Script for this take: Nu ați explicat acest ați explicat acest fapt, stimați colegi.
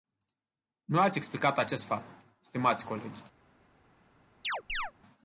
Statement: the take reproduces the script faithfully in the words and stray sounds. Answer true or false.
false